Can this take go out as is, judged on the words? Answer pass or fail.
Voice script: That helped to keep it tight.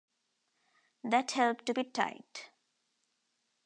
fail